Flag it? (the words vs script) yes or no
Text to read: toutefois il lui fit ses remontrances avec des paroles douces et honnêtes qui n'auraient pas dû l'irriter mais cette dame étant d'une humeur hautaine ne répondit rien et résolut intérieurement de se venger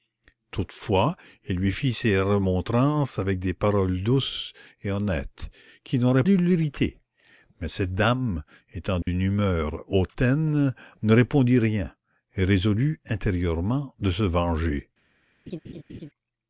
yes